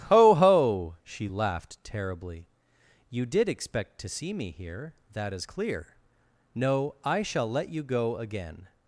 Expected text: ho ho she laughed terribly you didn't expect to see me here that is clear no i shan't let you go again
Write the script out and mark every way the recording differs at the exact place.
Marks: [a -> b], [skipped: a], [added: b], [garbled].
ho ho she laughed terribly you [didn't -> did] expect to see me here that is clear no i [shan't -> shall] let you go again